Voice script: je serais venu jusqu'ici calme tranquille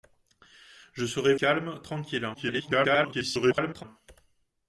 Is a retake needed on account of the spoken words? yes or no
yes